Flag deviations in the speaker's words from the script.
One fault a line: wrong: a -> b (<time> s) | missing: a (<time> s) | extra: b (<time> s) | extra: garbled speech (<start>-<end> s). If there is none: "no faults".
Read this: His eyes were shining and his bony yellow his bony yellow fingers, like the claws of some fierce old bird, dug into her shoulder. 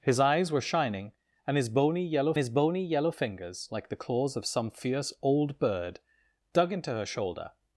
no faults